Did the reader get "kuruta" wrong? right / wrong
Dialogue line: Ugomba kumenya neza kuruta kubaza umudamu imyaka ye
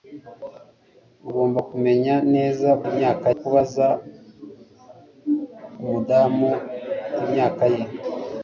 wrong